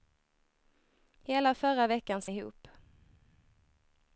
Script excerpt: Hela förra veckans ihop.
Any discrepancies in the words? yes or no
no